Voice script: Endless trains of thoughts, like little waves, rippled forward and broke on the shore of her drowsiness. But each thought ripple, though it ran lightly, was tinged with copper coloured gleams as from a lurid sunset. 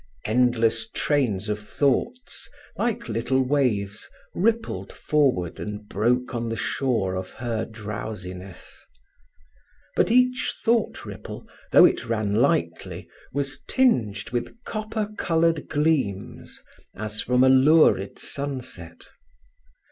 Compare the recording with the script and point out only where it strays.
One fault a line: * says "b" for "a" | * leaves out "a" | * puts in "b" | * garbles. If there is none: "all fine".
all fine